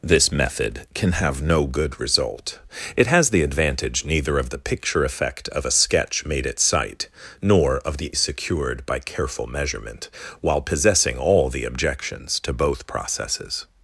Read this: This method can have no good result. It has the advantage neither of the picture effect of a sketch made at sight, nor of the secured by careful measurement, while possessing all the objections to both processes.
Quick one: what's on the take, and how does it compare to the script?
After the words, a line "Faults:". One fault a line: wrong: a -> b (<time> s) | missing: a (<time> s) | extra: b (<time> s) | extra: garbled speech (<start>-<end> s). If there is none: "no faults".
This method can have no good result. It has the advantage neither of the picture effect of a sketch made at sight, nor of the secured by careful measurement, while possessing all the objections to both processes.
Faults:
no faults